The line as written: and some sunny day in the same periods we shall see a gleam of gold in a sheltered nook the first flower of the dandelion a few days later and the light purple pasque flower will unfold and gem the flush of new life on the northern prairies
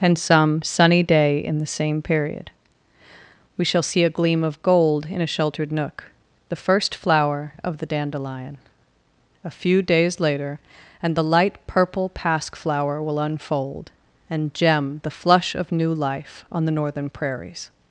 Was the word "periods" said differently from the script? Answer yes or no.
yes